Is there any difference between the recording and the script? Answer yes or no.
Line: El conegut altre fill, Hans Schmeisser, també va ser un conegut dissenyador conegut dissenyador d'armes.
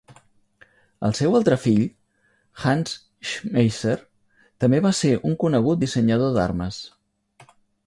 yes